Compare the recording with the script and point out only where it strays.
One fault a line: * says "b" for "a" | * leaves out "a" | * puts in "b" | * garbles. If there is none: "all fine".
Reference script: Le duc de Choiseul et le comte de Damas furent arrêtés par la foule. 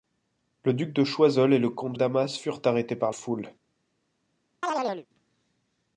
* leaves out "de"
* leaves out "la"